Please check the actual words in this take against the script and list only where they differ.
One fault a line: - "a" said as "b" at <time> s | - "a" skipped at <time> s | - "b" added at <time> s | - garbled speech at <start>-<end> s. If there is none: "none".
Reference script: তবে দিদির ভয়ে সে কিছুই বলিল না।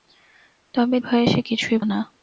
- "দিদির" skipped at 1.0 s
- "বলিল" skipped at 1.8 s